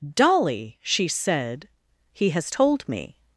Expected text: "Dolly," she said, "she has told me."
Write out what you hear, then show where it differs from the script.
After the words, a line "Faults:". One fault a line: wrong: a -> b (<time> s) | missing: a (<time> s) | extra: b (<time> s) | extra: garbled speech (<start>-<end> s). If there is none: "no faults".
"Dolly," she said, "he has told me."
Faults:
wrong: she -> he (2.1 s)